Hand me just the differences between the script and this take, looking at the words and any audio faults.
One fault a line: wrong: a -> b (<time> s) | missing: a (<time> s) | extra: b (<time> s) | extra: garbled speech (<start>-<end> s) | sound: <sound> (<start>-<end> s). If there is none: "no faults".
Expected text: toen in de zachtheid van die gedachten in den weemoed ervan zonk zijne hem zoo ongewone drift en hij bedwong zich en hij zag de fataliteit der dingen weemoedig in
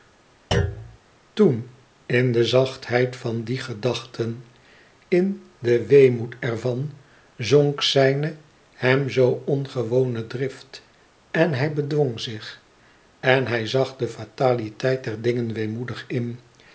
sound: thud (0.5-1.0 s)